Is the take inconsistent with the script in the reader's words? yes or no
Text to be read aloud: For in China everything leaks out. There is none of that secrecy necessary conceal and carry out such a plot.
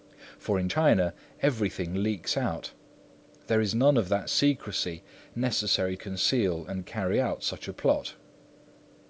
no